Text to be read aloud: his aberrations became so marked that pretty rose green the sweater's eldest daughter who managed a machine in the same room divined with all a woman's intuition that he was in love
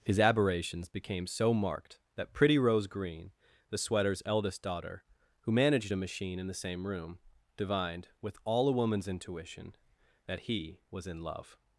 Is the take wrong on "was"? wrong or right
right